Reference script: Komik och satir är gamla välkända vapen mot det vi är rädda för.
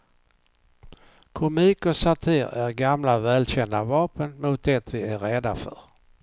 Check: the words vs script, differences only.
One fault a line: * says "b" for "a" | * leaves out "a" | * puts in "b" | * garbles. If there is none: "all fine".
all fine